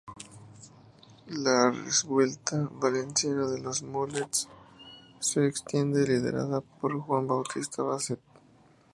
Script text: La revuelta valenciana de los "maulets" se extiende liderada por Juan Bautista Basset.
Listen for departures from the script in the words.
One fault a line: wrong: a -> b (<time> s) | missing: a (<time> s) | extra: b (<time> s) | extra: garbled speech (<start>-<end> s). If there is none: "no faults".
no faults